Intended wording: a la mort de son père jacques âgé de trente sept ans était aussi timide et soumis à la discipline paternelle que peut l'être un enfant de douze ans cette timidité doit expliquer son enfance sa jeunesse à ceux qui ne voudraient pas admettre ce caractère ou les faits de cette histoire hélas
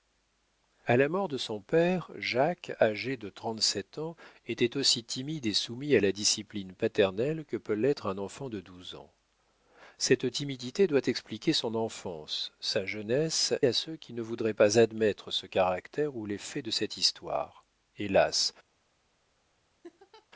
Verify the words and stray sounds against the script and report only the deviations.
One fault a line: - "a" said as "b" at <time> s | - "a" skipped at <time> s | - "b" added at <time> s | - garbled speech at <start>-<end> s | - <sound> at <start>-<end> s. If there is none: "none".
- laugh at 19.8-20.3 s